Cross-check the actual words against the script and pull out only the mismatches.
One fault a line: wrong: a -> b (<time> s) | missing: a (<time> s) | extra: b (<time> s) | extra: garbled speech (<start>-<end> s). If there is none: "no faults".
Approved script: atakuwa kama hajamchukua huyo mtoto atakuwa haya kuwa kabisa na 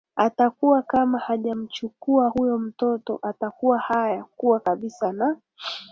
no faults